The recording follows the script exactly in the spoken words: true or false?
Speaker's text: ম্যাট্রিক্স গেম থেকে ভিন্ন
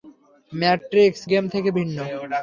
true